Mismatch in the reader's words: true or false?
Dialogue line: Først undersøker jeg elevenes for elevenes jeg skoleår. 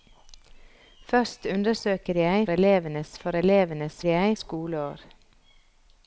false